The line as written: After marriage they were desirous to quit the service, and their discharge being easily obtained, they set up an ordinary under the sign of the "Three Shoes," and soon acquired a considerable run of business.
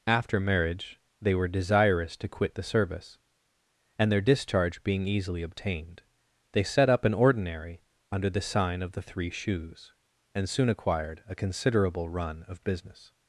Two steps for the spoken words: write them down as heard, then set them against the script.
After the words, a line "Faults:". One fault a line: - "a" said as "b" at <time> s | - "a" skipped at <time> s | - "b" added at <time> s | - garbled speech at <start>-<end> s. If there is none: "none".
After marriage they were desirous to quit the service, and their discharge being easily obtained, they set up an ordinary under the sign of the "Three Shoes," and soon acquired a considerable run of business.
Faults:
none